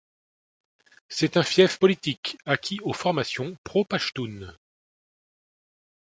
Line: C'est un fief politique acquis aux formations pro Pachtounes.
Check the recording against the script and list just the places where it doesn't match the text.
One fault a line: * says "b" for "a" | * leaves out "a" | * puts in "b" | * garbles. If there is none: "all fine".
all fine